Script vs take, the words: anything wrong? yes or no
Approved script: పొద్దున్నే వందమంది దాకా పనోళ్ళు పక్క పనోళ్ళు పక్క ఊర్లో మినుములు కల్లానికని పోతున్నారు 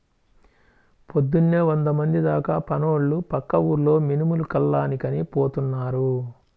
yes